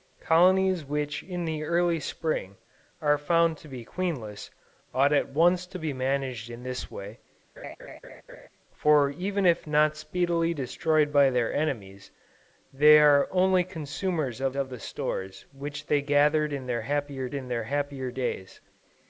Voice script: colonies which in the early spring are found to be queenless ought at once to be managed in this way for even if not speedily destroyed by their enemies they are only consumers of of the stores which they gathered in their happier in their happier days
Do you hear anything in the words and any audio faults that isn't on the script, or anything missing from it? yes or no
yes